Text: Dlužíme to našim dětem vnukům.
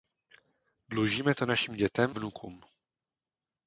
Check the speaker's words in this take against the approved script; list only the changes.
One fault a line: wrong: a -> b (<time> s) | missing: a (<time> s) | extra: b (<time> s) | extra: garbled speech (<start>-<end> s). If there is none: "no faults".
no faults